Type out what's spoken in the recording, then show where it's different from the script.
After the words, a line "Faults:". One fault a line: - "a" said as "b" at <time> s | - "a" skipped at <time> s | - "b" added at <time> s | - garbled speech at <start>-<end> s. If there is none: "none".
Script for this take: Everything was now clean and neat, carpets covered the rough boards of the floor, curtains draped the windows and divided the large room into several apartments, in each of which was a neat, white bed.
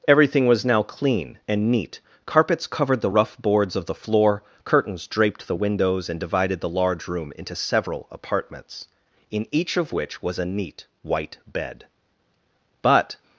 Everything was now clean and neat, carpets covered the rough boards of the floor, curtains draped the windows and divided the large room into several apartments, in each of which was a neat, white bed. But
Faults:
- "But" added at 12.8 s